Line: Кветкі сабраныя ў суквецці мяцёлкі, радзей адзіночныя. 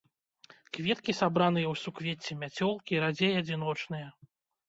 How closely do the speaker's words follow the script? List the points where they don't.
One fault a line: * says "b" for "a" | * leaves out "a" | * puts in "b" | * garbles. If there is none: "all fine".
all fine